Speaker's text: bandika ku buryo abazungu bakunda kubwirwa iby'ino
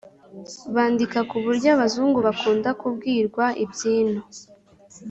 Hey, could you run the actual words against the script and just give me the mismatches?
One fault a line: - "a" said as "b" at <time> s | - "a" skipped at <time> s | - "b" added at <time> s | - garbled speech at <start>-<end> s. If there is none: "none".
none